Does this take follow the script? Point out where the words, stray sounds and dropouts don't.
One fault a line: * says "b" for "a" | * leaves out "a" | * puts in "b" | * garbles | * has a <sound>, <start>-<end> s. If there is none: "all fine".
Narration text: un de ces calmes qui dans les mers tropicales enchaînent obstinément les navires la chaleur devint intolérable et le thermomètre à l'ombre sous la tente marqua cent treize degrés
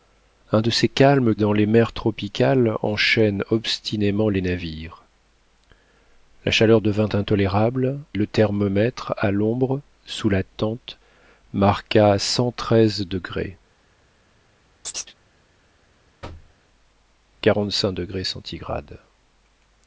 * leaves out "qui"
* leaves out "et"
* has a chirp, 14.8-15.1 s
* has a thud, 16.2-16.6 s